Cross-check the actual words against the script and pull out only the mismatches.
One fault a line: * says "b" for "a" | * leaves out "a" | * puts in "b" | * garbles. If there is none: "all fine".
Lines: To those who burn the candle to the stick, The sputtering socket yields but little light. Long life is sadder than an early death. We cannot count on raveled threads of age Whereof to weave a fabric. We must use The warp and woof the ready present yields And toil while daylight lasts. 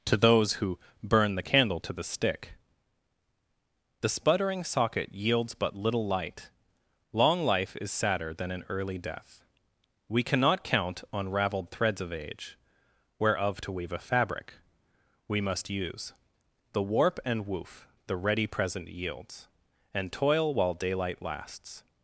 all fine